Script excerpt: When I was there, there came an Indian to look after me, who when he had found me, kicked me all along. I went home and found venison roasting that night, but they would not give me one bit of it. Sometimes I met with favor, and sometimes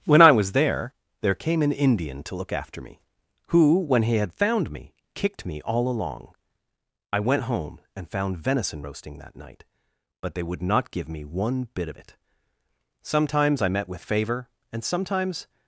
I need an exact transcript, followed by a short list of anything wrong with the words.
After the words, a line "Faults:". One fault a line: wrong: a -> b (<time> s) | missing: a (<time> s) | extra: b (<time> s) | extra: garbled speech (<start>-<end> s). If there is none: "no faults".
When I was there, there came an Indian to look after me, who when he had found me, kicked me all along. I went home and found venison roasting that night, but they would not give me one bit of it. Sometimes I met with favor, and sometimes
Faults:
no faults